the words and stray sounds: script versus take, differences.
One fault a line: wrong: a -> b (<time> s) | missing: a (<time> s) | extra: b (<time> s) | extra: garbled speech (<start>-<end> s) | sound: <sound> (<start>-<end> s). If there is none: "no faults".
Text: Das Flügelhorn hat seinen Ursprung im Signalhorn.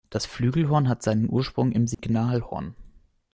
sound: dropout (1.9-2.0 s)